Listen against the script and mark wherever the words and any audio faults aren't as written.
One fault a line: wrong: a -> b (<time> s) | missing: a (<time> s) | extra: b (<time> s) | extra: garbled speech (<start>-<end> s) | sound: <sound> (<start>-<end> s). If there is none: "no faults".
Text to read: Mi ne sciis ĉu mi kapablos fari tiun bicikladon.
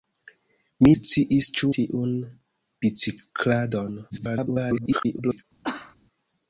missing: ne (0.9 s)
missing: mi kapablos fari (1.7 s)
extra: garbled speech (4.1-5.4 s)
sound: cough (5.6-6.0 s)